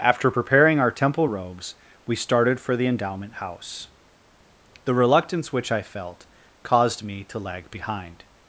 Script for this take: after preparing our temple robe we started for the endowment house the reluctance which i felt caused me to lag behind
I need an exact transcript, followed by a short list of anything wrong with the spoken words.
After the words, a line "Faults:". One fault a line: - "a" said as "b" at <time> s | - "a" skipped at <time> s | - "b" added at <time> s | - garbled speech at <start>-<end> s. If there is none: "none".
after preparing our temple robes we started for the endowment house the reluctance which i felt caused me to lag behind
Faults:
- "robe" said as "robes" at 1.2 s